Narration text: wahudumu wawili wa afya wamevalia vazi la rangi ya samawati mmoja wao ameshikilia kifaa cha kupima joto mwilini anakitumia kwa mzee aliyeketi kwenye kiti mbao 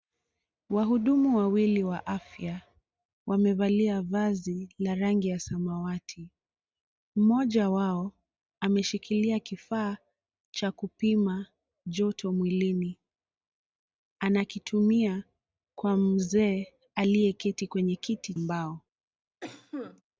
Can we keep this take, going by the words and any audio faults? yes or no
no